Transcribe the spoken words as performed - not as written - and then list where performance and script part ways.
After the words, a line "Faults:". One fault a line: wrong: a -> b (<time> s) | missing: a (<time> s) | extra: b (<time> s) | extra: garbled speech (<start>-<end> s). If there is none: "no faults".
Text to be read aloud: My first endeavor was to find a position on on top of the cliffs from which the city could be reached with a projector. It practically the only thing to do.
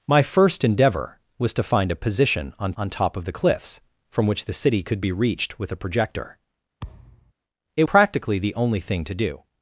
My first endeavor was to find a position on on top of the cliffs from which the city could be reached with a projector. It practically the only thing to do.
Faults:
no faults